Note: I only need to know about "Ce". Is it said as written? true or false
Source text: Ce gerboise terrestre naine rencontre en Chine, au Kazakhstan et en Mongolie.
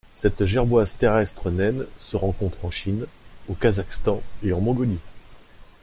false